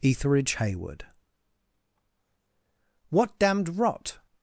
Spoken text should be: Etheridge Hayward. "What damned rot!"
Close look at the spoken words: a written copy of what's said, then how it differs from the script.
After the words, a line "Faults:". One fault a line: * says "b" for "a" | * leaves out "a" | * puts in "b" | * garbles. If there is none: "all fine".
Etheridge Hayward. "What damned rot!"
Faults:
all fine